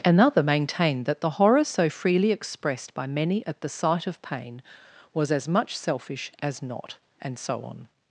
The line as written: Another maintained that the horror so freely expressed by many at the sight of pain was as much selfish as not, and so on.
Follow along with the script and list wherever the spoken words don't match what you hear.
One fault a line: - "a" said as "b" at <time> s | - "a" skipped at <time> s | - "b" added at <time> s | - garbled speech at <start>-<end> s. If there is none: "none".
none